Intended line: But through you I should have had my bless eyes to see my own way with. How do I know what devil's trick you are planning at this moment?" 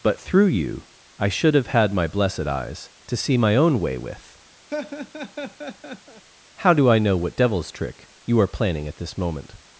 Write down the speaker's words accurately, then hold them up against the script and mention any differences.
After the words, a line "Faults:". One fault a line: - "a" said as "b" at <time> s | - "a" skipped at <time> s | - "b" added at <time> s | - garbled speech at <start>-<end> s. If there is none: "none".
But through you I should have had my blessed eyes to see my own way with. How do I know what devil's trick you are planning at this moment?"
Faults:
- "bless" said as "blessed" at 2.1 s